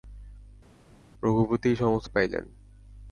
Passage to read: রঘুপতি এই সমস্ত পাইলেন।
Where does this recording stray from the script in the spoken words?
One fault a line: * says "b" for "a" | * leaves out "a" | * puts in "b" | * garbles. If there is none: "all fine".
all fine